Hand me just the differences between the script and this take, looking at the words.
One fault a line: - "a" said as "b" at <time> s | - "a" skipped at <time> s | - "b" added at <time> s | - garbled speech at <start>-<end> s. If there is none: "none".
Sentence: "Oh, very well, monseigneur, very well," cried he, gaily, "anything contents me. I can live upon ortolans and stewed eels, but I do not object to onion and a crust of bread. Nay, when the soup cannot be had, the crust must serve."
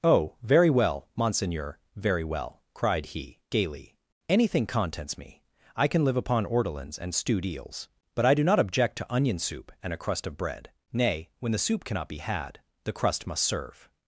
- "soup" added at 9.4 s